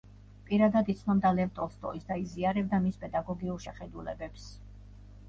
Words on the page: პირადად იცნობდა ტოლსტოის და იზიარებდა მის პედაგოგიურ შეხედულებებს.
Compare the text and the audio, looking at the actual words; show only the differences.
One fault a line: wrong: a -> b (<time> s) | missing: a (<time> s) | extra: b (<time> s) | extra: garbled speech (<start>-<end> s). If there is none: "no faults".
extra: ლევ (1.4 s)